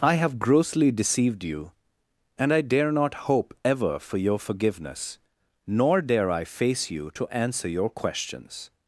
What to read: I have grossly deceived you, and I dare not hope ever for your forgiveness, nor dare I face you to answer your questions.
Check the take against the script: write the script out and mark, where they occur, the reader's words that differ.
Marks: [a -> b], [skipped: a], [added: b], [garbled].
I have grossly deceived you, and I dare not hope ever for your forgiveness, nor dare I face you to answer your questions.